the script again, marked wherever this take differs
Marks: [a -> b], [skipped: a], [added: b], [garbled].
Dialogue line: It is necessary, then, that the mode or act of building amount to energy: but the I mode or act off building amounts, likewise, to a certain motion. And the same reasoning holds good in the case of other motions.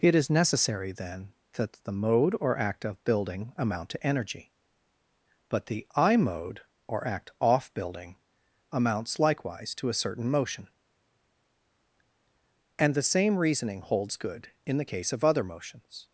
It is necessary, then, that the mode or act of building amount to energy: but the I mode or act off building amounts, likewise, to a certain motion. And the same reasoning holds good in the case of other motions.